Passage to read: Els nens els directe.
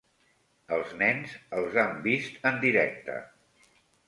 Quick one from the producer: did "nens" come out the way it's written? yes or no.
yes